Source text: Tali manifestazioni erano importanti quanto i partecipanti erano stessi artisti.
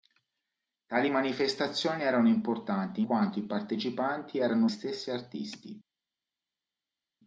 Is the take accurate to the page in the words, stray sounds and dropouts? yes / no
yes